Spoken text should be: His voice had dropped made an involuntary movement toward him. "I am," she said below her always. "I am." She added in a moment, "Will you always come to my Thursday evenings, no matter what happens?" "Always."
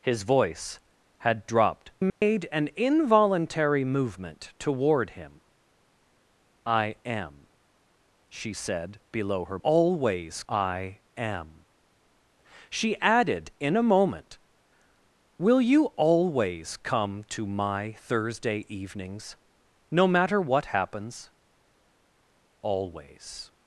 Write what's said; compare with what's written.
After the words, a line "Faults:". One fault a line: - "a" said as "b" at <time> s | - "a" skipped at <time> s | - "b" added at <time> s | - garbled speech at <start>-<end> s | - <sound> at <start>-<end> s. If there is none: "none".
His voice had dropped made an involuntary movement toward him. "I am," she said below her always. "I am." She added in a moment, "Will you always come to my Thursday evenings, no matter what happens?" "Always."
Faults:
- dropout at 2.1-2.2 s